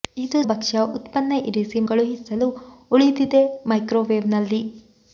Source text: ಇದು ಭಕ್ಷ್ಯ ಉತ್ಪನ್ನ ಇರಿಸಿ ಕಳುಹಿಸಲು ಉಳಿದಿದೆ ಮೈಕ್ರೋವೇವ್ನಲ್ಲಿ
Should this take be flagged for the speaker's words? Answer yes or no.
no